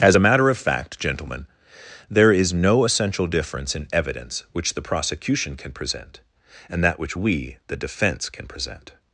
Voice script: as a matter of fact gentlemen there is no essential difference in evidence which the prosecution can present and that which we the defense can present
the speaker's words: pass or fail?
pass